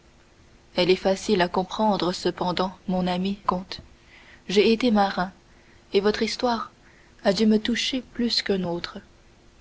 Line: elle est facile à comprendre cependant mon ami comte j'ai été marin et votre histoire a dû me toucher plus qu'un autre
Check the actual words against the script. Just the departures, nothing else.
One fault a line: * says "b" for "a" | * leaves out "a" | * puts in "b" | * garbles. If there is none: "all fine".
all fine